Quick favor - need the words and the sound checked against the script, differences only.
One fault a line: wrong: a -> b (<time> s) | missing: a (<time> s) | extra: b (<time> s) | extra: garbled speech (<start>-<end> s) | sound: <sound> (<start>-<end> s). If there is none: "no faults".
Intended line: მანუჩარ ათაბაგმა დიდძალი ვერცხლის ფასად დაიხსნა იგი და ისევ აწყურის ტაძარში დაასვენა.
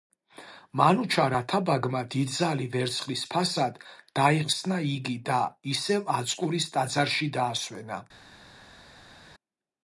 no faults